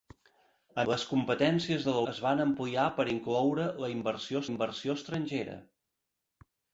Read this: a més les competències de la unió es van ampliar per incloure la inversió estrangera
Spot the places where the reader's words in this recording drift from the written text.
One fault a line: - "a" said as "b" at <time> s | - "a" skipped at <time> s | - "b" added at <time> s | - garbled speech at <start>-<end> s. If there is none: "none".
- "més" skipped at 0.8 s
- "unió" skipped at 2.0 s
- "inversió" added at 4.5 s